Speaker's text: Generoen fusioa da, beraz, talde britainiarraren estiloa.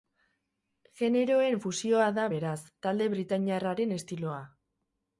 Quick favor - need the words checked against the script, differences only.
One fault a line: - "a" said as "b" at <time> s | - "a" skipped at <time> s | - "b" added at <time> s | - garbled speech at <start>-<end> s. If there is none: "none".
none